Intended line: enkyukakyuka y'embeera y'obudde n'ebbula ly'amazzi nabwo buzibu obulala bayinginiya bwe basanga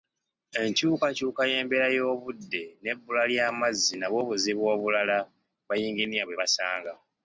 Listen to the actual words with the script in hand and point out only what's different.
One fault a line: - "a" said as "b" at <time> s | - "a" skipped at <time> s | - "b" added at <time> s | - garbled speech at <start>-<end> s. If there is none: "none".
none